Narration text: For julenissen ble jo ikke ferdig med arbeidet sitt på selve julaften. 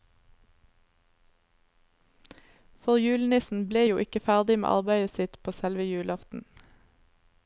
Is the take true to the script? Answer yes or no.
yes